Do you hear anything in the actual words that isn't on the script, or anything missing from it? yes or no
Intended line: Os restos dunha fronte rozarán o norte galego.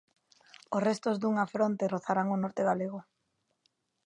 no